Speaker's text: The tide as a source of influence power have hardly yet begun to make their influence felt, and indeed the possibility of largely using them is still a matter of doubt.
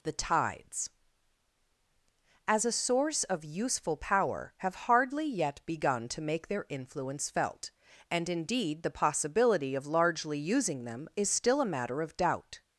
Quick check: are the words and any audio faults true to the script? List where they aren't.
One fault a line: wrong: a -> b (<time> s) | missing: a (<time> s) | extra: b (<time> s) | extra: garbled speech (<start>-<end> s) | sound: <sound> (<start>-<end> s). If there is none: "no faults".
wrong: tide -> tides (0.1 s)
wrong: influence -> useful (3.5 s)